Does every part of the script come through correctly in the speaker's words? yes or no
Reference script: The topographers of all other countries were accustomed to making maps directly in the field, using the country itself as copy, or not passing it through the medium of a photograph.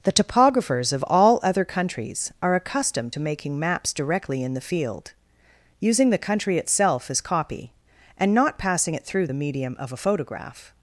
no